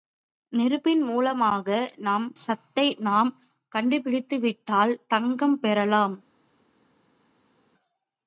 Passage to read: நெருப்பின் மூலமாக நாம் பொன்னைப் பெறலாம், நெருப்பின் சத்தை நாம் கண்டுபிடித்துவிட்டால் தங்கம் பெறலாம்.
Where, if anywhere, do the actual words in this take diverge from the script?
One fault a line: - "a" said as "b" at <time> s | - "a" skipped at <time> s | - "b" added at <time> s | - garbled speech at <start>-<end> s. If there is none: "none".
- "பொன்னைப் பெறலாம் நெருப்பின்" skipped at 2.2 s